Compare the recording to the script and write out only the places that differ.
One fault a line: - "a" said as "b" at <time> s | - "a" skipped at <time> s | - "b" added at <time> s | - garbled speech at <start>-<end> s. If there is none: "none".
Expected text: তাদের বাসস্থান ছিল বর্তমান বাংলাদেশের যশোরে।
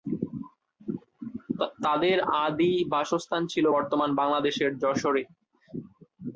- "আদি" added at 2.4 s